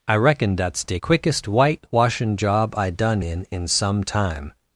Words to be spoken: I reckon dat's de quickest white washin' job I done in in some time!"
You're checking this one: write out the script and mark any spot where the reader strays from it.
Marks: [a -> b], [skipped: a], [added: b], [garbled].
I reckon dat's de quickest white washin' job I done in in some time!"